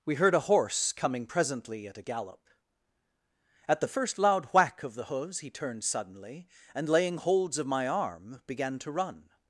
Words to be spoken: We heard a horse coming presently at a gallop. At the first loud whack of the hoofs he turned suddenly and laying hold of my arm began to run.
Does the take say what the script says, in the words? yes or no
no